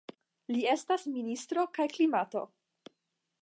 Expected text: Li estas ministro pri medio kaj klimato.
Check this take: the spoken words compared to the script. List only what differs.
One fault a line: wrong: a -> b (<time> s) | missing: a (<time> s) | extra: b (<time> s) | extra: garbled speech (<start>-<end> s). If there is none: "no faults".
missing: pri medio (1.6 s)